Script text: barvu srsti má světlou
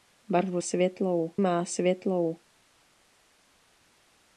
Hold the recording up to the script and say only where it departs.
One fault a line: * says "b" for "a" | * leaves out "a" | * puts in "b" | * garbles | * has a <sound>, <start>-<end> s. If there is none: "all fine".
* says "světlou" for "srsti"